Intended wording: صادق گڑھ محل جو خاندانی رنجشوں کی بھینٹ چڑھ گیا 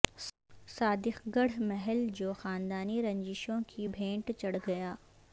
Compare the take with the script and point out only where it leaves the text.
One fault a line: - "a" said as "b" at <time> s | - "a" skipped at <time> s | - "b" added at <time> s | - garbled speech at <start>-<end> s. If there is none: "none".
none